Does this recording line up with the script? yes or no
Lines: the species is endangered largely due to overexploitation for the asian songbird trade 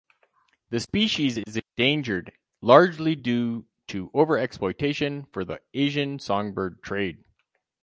yes